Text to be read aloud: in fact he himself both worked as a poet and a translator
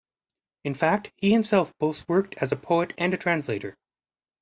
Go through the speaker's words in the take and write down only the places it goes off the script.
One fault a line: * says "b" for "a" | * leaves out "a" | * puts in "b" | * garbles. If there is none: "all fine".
all fine